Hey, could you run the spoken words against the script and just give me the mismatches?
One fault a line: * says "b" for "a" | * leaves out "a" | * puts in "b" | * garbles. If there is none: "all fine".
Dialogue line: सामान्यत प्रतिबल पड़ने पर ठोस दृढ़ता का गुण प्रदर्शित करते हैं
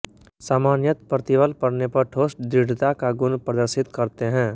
all fine